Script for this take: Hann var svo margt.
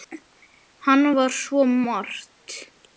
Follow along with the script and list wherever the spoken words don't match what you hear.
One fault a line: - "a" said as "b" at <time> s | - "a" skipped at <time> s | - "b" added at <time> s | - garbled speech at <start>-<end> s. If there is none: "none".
none